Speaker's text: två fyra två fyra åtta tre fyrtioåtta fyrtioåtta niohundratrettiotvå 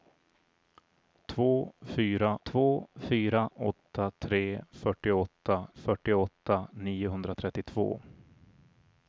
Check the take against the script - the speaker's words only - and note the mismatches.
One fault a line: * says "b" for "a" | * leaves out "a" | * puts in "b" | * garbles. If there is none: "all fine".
all fine